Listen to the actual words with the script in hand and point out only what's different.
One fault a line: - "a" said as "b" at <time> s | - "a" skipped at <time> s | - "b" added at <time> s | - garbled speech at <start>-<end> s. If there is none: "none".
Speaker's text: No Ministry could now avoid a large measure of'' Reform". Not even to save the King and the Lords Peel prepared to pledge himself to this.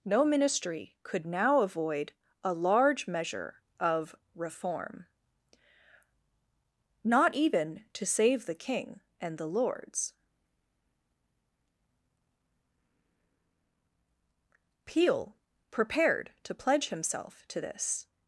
none